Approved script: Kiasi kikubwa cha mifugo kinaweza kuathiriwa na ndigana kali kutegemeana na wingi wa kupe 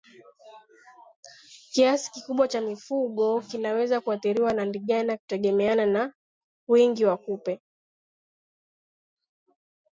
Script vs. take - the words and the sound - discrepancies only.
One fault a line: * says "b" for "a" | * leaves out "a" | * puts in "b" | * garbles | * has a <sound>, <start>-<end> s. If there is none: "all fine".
* leaves out "kali"